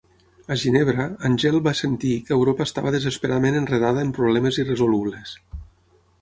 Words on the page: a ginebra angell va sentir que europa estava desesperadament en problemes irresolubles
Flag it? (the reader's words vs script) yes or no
yes